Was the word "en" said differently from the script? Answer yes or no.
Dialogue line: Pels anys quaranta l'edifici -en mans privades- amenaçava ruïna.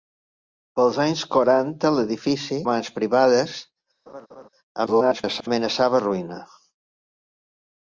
yes